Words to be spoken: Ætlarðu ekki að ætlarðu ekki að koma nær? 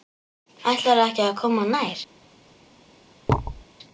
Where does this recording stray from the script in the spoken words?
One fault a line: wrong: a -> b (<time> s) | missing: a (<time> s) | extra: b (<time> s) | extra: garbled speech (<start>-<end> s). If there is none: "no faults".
missing: ætlarðu ekki að (1.4 s)